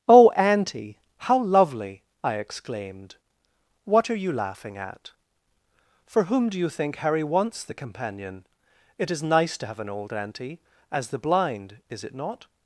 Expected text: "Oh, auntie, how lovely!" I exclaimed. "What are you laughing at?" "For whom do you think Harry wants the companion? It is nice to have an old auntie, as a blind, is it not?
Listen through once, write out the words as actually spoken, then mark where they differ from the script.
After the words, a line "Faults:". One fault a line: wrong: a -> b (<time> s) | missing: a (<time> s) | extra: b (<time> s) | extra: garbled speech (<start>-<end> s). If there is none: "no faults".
"Oh, auntie, how lovely!" I exclaimed. "What are you laughing at?" "For whom do you think Harry wants the companion? It is nice to have an old auntie, as the blind, is it not?
Faults:
wrong: a -> the (11.1 s)